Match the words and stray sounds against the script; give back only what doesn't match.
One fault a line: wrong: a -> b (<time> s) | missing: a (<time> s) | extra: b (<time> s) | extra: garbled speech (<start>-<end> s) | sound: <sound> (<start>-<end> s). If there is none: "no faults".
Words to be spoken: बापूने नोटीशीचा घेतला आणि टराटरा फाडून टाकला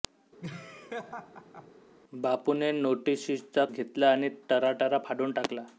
sound: laugh (0.4-1.7 s)